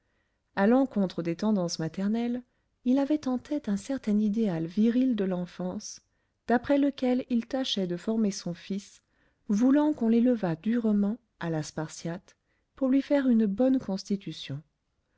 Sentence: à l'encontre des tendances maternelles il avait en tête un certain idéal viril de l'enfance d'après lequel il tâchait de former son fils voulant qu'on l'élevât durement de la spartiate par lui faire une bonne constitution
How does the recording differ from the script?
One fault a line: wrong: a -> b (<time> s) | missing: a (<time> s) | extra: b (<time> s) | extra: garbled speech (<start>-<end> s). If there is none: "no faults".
wrong: de -> à (11.4 s)
wrong: par -> pour (12.8 s)